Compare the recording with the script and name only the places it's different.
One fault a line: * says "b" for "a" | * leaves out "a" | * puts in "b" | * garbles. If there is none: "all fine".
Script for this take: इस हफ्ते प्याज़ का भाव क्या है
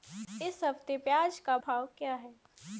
all fine